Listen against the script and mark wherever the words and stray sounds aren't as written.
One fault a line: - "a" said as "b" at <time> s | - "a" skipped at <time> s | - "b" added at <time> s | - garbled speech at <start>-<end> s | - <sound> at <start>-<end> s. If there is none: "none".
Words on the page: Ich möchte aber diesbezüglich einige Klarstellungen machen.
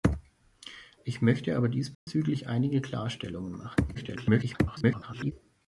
- dropout at 1.9-2.1 s
- garbled speech at 3.9-5.3 s